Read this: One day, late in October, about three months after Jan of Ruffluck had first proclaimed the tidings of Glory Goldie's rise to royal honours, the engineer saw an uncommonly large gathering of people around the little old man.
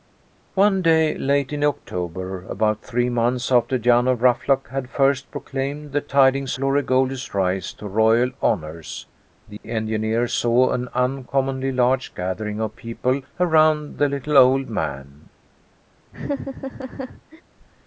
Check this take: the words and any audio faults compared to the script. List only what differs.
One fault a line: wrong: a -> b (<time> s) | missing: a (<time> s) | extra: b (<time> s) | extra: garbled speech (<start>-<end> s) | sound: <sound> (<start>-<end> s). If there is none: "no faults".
missing: of (6.6 s)
sound: dropout (9.6-9.6 s)
sound: laugh (16.1-17.4 s)